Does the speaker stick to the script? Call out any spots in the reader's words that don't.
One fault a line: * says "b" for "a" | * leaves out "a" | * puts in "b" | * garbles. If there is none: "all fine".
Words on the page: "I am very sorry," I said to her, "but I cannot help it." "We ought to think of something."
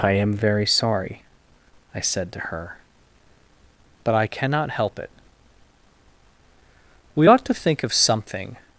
all fine